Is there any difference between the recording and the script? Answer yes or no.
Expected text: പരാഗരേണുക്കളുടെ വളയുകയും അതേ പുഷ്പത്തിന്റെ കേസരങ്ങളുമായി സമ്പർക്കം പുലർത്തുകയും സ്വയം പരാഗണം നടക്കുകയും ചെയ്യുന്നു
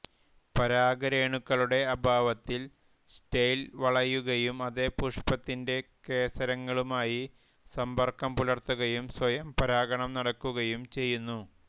yes